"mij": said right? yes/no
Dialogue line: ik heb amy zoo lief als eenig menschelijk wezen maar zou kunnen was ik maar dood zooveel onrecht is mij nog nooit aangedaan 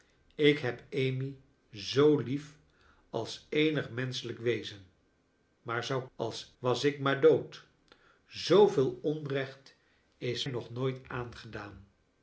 no